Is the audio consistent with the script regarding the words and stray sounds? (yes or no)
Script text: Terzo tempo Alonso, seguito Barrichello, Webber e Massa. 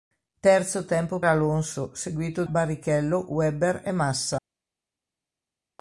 yes